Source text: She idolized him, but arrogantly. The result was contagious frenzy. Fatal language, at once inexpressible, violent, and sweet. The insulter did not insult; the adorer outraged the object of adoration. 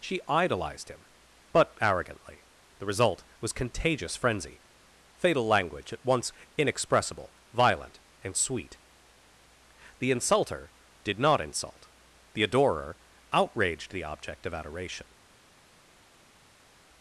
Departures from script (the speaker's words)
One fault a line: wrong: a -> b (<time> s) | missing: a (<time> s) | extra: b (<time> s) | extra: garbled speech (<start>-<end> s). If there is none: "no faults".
no faults